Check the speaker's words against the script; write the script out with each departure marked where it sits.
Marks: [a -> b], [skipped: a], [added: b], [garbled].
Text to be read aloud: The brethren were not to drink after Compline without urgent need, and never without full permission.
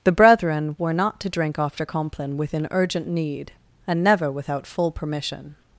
The brethren were not to drink after Compline [without -> within] urgent need, and never without full permission.